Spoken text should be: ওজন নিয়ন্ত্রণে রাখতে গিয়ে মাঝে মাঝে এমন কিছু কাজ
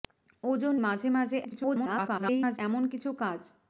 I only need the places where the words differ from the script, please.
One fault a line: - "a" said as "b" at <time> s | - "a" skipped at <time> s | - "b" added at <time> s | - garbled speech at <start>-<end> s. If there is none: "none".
- "নিয়ন্ত্রণে রাখতে গিয়ে" skipped at 0.7 s
- garbled speech at 1.4-2.6 s